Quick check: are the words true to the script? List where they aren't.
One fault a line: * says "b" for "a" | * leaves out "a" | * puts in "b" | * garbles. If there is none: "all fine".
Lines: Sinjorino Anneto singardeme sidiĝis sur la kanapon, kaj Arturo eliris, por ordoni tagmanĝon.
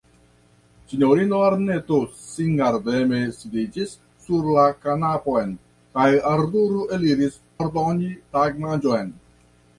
* leaves out "por"